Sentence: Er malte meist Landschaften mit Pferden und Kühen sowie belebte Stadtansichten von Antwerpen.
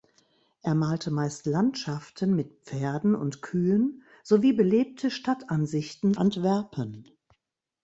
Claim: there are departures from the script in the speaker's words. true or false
true